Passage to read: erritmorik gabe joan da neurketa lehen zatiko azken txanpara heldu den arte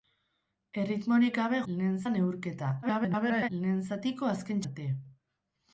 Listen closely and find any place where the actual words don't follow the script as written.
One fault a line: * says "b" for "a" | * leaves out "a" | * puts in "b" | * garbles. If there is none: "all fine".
* says "lehen" for "joan"
* garbles
* leaves out "txanpara heldu den"